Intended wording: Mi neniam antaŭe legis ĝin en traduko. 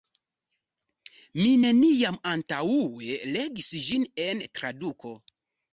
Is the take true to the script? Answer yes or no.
yes